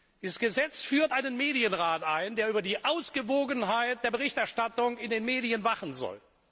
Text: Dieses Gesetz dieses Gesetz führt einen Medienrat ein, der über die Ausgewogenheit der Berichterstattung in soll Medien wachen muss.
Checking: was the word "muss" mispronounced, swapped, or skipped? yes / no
yes